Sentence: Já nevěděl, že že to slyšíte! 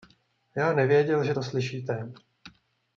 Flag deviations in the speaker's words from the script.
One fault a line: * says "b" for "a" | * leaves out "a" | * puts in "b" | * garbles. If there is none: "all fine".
* leaves out "že"